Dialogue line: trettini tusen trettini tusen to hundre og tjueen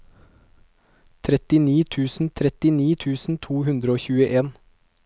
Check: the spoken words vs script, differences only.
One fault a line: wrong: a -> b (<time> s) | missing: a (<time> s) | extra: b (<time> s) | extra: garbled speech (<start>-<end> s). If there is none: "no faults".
no faults